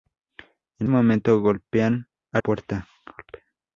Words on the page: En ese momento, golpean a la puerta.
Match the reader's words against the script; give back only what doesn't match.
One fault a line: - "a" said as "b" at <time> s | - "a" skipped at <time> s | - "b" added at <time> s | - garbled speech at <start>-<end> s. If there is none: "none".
- "ese" skipped at 0.9 s
- "la" skipped at 2.4 s